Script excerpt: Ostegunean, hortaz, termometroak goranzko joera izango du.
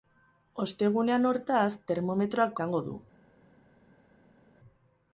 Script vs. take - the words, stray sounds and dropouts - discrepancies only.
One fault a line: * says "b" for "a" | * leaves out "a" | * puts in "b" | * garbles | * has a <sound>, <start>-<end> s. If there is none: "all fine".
* leaves out "goranzko joera"